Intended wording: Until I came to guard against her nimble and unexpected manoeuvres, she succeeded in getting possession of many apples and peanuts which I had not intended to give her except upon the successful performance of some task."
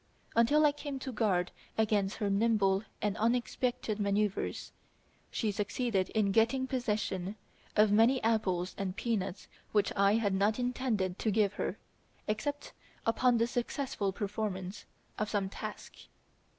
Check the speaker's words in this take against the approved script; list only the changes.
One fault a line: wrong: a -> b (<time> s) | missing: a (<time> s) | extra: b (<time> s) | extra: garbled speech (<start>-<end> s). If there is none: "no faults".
no faults